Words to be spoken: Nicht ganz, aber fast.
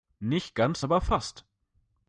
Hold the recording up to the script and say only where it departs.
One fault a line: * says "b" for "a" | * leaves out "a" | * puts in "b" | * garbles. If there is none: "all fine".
all fine